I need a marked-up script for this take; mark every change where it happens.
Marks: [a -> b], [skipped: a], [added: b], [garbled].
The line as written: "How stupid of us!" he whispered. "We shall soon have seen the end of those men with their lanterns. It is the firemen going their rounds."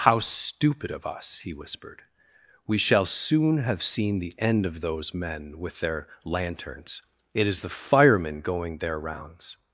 "How stupid of us!" he whispered. "We shall soon have seen the end of those men with their lanterns. It is the firemen going their rounds."